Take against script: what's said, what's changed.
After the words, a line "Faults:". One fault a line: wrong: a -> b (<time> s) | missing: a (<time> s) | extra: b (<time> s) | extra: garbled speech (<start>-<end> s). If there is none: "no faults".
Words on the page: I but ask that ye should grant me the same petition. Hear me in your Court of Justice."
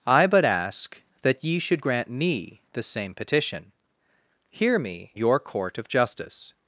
I but ask that ye should grant me the same petition. Hear me your Court of Justice."
Faults:
missing: in (5.1 s)